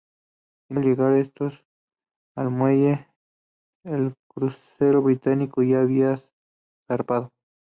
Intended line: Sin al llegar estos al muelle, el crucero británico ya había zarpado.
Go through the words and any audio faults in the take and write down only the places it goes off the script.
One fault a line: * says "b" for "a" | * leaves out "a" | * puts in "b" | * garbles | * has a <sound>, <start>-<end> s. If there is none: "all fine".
all fine